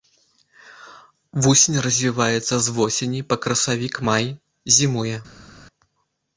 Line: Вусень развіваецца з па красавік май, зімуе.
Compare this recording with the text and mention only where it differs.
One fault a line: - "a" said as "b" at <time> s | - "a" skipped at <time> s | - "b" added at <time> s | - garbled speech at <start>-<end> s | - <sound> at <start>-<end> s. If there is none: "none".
- "восені" added at 2.8 s